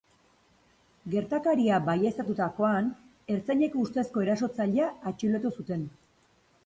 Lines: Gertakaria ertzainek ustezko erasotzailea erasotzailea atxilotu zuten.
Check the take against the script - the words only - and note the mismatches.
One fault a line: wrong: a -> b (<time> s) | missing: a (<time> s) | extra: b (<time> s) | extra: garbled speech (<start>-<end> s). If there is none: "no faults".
extra: baieztatutakoan (1.9 s)
missing: erasotzailea (4.9 s)